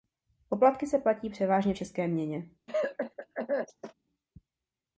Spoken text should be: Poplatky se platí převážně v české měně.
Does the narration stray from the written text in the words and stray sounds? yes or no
yes